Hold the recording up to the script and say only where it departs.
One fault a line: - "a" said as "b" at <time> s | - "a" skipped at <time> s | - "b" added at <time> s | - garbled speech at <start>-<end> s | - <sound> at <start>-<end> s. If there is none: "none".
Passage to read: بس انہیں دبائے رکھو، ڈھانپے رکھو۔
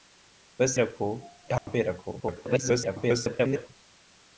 - "انہیں دبائے" skipped at 0.8 s
- dropout at 1.6-1.7 s
- garbled speech at 2.2-3.7 s